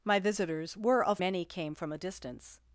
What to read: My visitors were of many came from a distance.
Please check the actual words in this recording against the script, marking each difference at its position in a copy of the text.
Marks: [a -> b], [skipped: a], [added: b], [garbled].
My visitors were of many came from a distance.